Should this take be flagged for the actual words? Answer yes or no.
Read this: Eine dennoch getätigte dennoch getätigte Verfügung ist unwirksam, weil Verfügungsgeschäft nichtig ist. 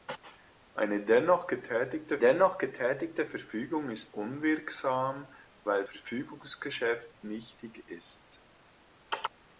no